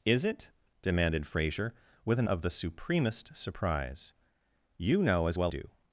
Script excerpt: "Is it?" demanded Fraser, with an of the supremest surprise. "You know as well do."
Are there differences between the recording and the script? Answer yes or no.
no